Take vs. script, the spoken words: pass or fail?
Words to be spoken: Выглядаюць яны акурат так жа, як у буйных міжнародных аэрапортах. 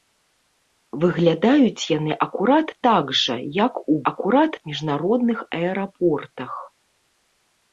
fail